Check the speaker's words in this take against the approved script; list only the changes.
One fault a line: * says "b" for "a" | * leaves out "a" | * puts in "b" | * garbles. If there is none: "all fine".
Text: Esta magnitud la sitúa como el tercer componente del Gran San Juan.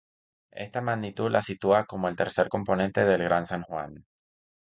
all fine